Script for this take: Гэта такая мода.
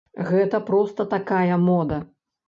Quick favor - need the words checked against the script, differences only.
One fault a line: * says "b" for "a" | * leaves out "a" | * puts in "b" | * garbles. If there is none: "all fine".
* puts in "проста"